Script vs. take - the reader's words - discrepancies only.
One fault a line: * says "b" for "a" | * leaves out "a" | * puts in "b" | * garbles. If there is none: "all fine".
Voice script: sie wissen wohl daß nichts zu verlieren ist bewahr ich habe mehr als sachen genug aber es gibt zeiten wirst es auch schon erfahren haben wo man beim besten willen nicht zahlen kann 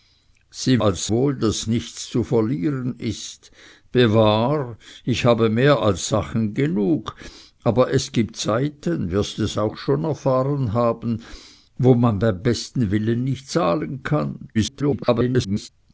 * says "als" for "wissen"
* garbles